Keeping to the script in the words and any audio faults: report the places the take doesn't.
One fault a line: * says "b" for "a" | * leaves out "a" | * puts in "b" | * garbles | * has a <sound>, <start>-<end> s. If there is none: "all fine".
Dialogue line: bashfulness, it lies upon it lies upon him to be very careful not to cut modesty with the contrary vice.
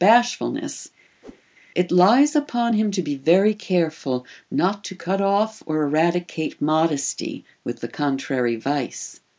* has a whoosh, 1.2-1.4 s
* leaves out "it lies upon"
* puts in "off or eradicate"